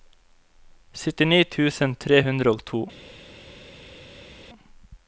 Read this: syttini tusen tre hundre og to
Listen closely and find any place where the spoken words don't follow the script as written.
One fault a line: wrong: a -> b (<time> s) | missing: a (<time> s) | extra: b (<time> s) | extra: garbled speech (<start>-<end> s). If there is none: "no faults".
no faults